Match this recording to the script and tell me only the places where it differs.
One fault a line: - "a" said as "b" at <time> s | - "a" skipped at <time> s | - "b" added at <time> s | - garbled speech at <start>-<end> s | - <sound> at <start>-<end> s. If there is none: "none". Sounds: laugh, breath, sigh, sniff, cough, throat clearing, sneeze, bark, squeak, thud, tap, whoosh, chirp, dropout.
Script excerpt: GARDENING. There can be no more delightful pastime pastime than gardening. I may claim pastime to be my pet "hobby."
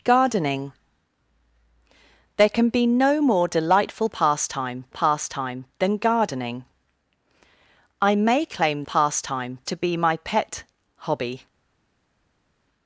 none